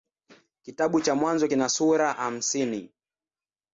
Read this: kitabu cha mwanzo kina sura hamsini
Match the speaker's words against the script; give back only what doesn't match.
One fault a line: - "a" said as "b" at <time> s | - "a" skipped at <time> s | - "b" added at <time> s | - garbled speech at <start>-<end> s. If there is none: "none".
none